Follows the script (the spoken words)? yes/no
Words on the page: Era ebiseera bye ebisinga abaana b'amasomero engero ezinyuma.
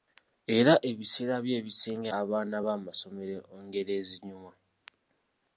yes